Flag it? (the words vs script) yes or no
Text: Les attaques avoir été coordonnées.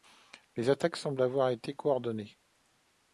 yes